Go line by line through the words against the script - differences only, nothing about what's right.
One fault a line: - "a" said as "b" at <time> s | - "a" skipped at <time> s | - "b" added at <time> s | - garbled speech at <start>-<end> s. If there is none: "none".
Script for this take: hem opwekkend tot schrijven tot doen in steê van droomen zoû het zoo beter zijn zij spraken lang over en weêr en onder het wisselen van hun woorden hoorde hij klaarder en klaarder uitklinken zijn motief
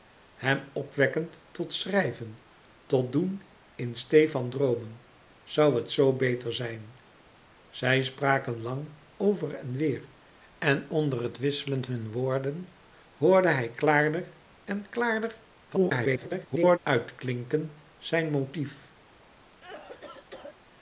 - "van" skipped at 11.8 s
- garbled speech at 15.7-16.8 s